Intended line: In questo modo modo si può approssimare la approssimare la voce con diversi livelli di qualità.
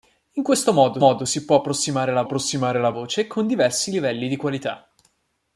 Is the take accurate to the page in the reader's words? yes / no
yes